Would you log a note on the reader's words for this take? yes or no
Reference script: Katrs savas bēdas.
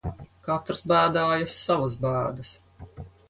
yes